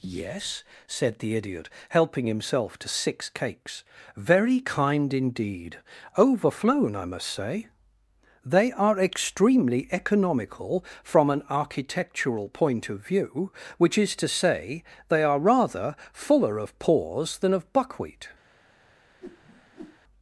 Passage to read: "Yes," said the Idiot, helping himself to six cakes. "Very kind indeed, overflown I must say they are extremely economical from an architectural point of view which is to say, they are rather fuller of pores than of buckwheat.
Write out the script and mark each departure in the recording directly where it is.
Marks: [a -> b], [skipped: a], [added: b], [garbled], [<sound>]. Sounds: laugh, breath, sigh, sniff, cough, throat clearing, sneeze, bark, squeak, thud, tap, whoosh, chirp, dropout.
"Yes," said the Idiot, helping himself to six cakes. "Very kind indeed, overflown I must say they are extremely economical from an architectural point of view which is to say, they are rather fuller of pores than of buckwheat. [whoosh]